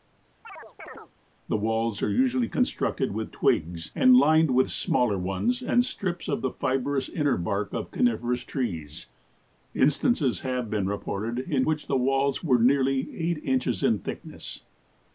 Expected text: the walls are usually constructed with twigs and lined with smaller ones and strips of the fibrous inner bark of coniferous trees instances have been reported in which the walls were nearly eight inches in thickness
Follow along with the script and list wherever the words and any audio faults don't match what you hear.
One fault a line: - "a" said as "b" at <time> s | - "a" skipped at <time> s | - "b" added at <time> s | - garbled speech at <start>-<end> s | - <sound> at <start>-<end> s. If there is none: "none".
- chirp at 0.4-1.1 s